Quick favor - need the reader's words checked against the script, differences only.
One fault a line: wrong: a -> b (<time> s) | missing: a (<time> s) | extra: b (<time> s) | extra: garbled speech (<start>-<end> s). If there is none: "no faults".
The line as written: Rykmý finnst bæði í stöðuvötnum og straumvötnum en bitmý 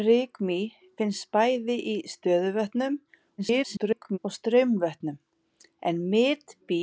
extra: garbled speech (3.4-4.2 s)